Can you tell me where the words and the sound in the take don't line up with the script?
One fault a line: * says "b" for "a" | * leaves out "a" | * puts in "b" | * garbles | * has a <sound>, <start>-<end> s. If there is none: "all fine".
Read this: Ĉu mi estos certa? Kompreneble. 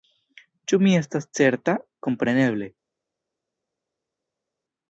* says "estas" for "estos"